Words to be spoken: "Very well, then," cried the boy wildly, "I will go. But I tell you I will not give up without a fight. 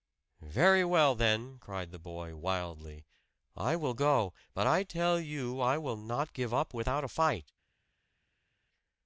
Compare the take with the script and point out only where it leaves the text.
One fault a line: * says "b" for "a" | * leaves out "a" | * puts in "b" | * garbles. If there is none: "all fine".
all fine